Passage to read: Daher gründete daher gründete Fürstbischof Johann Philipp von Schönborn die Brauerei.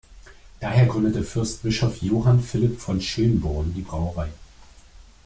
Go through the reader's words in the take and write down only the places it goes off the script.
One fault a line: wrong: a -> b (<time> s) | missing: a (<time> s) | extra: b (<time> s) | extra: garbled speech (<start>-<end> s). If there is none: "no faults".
missing: daher gründete (1.2 s)